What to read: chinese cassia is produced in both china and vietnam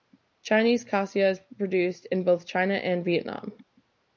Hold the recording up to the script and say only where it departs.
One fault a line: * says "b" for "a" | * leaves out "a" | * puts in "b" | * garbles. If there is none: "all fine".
all fine